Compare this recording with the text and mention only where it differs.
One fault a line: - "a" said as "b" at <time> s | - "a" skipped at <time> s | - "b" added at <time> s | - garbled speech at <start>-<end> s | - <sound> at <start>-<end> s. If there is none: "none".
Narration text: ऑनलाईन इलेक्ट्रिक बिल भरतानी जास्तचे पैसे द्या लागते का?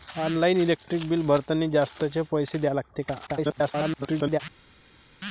- garbled speech at 3.3-4.4 s